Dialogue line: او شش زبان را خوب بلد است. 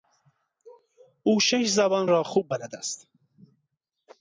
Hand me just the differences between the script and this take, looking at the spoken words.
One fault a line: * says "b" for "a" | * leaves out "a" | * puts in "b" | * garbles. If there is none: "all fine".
all fine